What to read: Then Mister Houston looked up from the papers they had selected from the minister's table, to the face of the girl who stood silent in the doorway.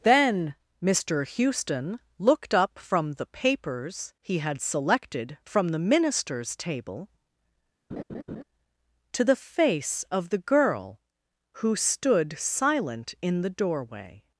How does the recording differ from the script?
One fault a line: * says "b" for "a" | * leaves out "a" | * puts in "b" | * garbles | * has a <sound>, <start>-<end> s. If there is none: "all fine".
* says "he" for "they"
* has a laugh, 7.9-8.4 s